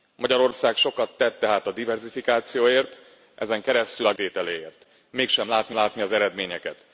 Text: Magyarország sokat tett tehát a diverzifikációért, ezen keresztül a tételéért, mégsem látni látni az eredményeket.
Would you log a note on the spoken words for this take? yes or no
no